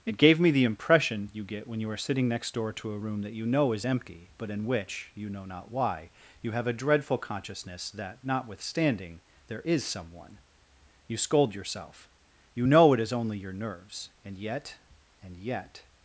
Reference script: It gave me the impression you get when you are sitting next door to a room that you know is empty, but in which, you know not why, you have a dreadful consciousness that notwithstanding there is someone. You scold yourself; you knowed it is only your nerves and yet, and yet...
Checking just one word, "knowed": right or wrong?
wrong